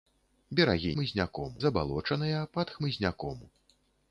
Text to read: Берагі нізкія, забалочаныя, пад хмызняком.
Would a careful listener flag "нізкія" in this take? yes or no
yes